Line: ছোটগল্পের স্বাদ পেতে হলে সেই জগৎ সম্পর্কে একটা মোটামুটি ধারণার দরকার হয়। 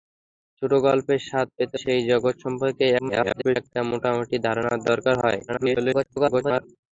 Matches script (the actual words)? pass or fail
fail